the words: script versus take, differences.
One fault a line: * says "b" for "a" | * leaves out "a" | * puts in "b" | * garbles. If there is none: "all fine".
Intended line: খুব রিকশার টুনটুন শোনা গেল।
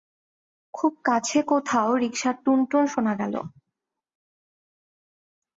* puts in "কাছে কোথাও"